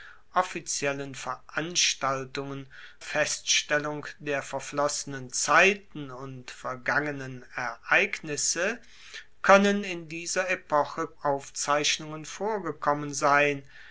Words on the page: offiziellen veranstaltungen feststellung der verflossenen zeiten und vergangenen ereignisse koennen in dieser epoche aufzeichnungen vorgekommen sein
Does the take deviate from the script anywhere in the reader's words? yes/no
no